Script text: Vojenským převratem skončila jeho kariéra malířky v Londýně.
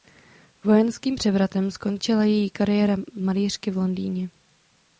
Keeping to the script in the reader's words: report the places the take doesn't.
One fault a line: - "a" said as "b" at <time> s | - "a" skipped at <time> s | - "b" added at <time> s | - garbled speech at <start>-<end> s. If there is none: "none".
- "jeho" said as "její" at 2.2 s